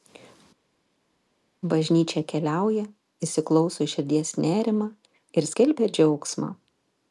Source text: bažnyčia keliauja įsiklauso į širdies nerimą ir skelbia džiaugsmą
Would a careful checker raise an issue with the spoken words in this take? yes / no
no